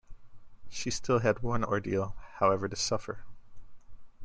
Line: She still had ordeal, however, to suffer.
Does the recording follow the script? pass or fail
fail